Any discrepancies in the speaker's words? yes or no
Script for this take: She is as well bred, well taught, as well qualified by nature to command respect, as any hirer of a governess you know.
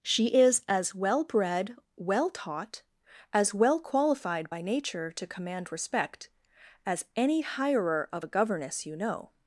no